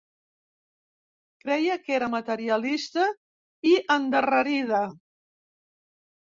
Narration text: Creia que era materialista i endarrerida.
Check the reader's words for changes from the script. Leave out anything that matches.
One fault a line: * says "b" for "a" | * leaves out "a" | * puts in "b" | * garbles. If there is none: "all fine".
all fine